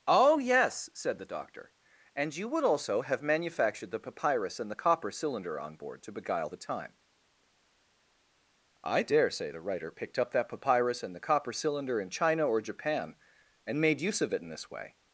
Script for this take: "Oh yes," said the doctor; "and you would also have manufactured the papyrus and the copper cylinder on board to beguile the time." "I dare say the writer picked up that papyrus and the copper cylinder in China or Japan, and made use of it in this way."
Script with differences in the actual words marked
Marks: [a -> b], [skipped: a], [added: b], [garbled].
"Oh yes," said the doctor; "and you would also have manufactured the papyrus and the copper cylinder on board to beguile the time." "I dare say the writer picked up that papyrus and the copper cylinder in China or Japan, and made use of it in this way."